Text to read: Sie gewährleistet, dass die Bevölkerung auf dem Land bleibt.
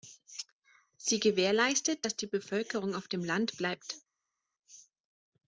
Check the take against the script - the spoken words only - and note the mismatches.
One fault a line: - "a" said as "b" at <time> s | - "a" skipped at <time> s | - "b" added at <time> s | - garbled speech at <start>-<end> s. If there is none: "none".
none